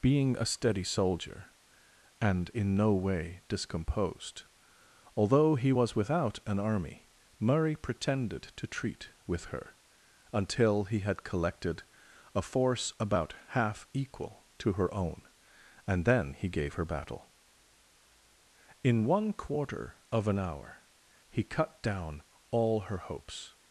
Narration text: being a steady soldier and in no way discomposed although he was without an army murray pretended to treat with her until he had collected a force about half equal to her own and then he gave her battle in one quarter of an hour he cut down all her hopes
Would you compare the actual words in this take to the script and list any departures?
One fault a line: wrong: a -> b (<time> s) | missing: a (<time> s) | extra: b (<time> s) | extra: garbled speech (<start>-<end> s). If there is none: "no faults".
no faults